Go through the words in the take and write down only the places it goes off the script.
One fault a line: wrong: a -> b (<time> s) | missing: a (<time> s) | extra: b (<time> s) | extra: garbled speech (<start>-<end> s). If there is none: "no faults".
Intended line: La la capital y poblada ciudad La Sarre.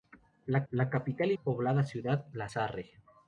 no faults